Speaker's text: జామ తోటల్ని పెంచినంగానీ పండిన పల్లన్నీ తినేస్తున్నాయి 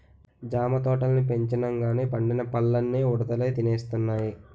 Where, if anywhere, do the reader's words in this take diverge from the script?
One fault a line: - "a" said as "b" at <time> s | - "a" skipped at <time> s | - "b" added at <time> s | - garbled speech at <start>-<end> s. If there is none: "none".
- "ఉడతలే" added at 3.0 s